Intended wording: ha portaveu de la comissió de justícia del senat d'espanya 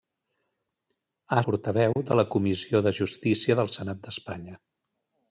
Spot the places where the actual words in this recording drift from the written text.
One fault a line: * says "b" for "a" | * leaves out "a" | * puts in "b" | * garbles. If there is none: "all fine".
all fine